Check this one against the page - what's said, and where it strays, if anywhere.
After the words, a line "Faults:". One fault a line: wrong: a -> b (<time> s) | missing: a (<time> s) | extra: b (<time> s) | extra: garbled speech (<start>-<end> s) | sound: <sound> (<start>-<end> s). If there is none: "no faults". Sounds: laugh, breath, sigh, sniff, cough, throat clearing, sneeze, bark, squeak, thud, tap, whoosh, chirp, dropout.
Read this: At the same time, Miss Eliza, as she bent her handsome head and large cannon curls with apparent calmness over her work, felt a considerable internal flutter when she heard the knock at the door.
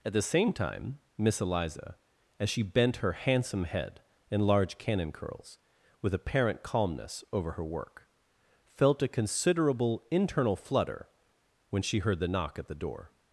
At the same time, Miss Eliza, as she bent her handsome head and large cannon curls with apparent calmness over her work, felt a considerable internal flutter when she heard the knock at the door.
Faults:
no faults